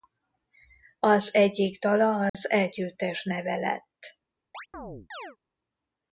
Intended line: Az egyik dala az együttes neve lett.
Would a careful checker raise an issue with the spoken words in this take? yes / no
no